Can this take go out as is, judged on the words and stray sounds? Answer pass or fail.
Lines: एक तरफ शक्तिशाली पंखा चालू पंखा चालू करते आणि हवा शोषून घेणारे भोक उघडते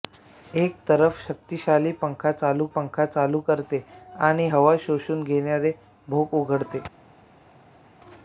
pass